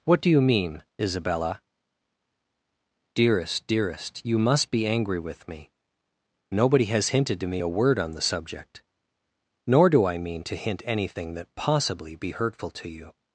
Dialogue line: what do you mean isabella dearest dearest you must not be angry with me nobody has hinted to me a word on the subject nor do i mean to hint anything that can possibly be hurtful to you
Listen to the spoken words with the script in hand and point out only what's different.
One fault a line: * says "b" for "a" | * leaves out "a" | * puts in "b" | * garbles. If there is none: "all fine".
* leaves out "not"
* leaves out "can"